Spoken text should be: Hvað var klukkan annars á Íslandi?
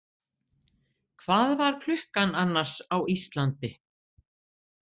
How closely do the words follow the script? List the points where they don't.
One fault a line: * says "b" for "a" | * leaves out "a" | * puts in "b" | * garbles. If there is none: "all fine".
all fine